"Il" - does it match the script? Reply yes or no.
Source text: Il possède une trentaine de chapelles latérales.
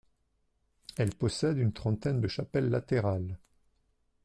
no